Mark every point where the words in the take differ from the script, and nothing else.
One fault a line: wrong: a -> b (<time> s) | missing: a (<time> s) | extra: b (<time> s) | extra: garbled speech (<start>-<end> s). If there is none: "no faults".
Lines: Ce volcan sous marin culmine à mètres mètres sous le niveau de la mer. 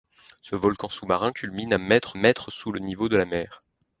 no faults